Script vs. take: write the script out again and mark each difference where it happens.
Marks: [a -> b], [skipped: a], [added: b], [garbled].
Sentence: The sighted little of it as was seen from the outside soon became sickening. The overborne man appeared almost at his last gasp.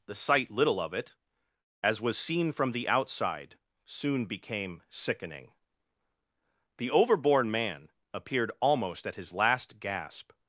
The [sighted -> sight] little of it as was seen from the outside soon became sickening. The overborne man appeared almost at his last gasp.